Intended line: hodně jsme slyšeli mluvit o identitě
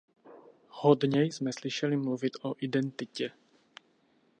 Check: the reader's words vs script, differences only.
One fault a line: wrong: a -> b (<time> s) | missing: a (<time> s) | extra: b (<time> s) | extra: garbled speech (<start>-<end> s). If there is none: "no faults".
no faults